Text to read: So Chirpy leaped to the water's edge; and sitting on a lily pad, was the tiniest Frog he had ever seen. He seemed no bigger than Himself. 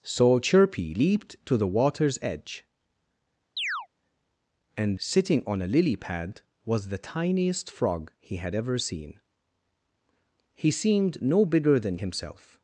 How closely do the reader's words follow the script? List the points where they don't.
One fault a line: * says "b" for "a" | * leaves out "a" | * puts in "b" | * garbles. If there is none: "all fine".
all fine